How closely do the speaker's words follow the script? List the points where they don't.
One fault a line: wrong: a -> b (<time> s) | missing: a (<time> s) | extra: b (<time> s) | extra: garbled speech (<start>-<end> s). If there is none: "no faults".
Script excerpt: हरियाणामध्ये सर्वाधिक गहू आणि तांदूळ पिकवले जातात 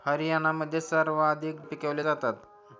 missing: गहू आणि तांदूळ (1.6 s)